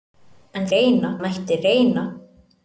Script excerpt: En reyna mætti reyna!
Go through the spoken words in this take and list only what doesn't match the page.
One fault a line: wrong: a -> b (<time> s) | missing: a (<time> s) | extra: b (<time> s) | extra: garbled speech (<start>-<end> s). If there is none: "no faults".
no faults